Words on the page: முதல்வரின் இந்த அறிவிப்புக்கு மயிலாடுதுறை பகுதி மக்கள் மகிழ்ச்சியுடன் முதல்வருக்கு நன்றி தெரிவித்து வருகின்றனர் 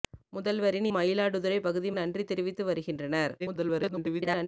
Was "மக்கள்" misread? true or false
true